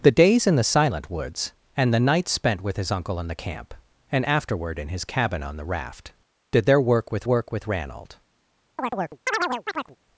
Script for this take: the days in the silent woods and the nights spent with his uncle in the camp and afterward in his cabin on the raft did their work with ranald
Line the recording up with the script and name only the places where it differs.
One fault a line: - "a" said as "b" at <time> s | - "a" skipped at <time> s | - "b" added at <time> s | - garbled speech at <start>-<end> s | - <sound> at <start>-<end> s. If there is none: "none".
- "work with" added at 7.2 s
- chirp at 8.8-10.0 s